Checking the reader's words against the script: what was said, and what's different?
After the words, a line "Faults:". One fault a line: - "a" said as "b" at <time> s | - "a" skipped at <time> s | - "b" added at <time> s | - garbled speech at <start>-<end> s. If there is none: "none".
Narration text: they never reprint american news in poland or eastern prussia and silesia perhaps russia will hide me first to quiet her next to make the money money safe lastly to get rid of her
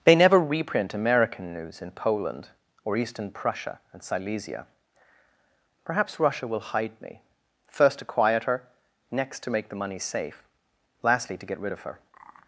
they never reprint american news in poland or eastern prussia and silesia perhaps russia will hide me first to quiet her next to make the money safe lastly to get rid of her
Faults:
- "money" skipped at 10.0 s